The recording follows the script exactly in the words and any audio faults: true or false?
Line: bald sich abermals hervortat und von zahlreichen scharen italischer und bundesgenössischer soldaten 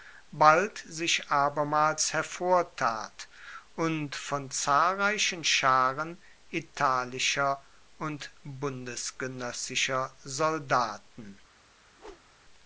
false